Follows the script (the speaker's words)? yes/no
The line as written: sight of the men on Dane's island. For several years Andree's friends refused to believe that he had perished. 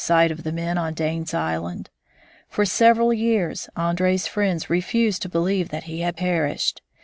yes